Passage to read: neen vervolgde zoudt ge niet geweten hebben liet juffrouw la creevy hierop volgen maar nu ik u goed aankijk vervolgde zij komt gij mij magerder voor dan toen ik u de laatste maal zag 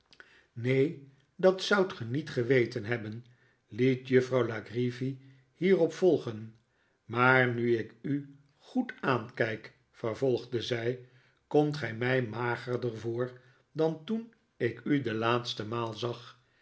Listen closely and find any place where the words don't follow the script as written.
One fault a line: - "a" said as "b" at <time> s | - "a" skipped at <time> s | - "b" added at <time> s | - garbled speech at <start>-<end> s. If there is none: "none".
- "vervolgde" said as "dat" at 1.4 s